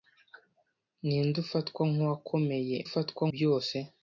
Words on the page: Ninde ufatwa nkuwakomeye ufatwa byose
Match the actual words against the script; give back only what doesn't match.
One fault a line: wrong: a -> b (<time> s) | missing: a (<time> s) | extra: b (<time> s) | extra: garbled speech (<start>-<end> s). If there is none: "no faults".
no faults